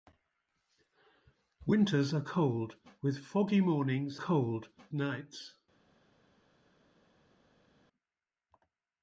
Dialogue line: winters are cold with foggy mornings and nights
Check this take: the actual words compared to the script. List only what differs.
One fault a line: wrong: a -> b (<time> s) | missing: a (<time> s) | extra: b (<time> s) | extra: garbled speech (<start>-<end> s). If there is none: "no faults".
wrong: and -> cold (4.2 s)